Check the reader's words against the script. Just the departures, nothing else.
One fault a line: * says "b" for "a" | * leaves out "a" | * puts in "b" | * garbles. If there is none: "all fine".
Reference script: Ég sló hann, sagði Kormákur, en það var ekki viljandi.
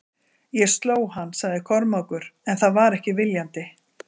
all fine